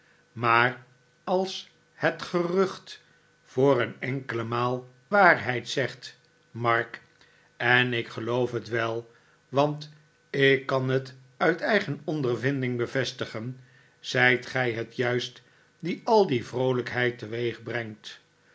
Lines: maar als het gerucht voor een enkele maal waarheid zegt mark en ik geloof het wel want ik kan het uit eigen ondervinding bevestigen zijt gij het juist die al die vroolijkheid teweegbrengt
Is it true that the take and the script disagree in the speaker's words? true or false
false